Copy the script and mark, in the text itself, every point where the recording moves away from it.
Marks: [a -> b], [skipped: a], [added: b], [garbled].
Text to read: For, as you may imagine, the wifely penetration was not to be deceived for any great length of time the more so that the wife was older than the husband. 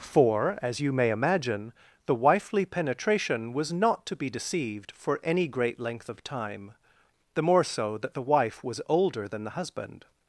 For, as you may imagine, the wifely penetration was not to be deceived for any great length of time the more so that the wife was older than the husband.